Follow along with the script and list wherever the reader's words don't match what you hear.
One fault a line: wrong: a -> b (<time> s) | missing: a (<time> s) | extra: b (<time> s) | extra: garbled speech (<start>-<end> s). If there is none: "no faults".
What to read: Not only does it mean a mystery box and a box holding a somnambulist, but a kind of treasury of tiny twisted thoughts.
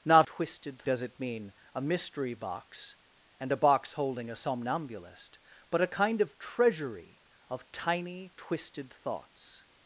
wrong: only -> twisted (0.2 s)